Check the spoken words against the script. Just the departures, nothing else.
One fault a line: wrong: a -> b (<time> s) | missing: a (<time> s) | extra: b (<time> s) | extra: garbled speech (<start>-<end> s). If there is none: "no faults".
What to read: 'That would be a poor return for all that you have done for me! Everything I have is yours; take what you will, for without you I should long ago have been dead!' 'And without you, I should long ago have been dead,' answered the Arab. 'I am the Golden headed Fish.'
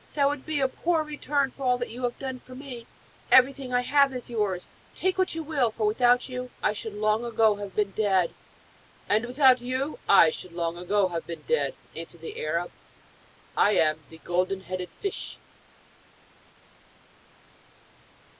no faults